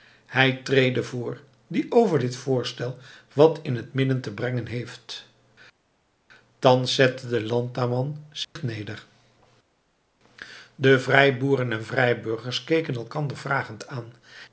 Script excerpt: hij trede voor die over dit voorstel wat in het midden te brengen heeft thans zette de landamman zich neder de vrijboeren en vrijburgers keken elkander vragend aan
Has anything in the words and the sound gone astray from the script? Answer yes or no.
yes